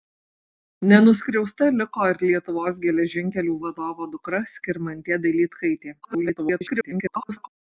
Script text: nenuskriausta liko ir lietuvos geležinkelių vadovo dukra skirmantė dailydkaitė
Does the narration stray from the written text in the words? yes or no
yes